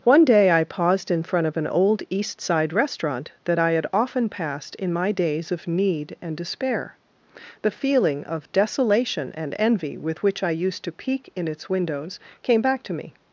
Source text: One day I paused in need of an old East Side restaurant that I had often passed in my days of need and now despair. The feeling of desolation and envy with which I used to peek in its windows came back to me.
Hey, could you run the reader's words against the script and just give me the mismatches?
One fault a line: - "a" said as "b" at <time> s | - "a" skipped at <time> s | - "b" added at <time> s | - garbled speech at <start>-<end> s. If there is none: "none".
- "need" said as "front" at 1.2 s
- "now" skipped at 6.4 s